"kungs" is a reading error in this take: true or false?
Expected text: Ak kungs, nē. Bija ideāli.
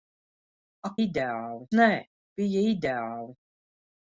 true